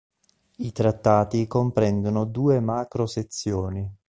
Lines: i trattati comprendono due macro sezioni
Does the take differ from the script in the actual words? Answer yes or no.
no